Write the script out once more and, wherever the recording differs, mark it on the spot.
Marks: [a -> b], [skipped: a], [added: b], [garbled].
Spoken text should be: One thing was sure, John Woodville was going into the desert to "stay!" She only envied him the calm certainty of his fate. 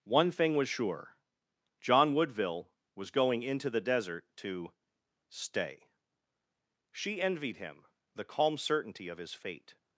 One thing was sure, John Woodville was going into the desert to "stay!" She [skipped: only] envied him the calm certainty of his fate.